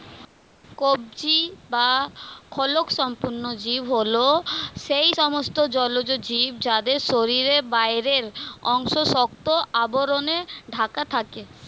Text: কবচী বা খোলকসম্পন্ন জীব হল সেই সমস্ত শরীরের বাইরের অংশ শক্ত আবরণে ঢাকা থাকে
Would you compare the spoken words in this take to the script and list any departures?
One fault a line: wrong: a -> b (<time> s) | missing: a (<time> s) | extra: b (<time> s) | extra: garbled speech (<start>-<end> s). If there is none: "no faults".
extra: জলজ জীব যাদের (5.8 s)